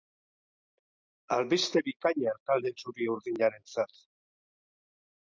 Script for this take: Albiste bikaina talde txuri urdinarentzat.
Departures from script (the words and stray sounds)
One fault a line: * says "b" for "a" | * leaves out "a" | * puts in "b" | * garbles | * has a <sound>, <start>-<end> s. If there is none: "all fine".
all fine